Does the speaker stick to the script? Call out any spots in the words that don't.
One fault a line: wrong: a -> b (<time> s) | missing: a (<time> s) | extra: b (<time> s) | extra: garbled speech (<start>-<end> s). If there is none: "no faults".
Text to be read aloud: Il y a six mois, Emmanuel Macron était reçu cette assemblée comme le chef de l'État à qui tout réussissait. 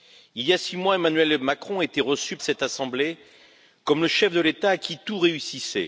no faults